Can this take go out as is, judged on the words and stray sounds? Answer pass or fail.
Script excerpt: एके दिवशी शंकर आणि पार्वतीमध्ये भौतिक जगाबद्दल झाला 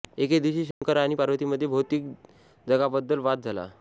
fail